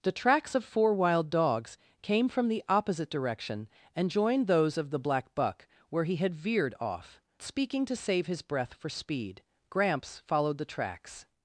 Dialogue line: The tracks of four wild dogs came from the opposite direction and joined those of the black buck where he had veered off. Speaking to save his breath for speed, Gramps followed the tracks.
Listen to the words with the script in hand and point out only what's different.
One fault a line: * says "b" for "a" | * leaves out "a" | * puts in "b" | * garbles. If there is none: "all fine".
all fine